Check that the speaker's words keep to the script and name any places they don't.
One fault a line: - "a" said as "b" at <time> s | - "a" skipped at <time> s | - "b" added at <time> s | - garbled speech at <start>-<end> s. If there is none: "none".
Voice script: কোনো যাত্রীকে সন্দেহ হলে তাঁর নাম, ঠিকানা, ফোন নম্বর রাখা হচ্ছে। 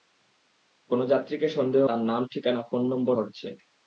- "হলে" skipped at 1.8 s
- "রাখা" skipped at 3.1 s